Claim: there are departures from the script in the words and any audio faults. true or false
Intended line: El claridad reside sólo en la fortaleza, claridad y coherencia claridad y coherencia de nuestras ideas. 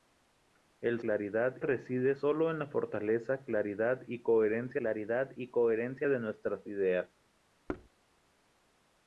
true